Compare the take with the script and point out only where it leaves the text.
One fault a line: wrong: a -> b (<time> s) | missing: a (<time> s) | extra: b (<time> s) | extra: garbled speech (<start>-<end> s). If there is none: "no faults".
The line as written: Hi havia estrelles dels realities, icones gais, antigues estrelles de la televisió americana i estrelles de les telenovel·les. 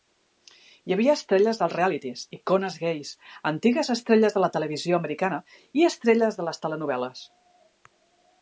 no faults